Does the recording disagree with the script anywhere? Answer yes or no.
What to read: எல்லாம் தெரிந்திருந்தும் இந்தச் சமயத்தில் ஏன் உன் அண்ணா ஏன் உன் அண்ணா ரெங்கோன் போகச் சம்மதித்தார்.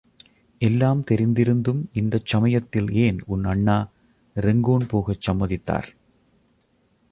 yes